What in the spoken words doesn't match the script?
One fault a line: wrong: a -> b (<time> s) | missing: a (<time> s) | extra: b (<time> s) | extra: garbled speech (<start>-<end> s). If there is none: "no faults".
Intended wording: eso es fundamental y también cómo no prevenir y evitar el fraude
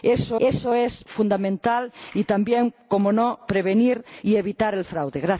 extra: eso (0.4 s)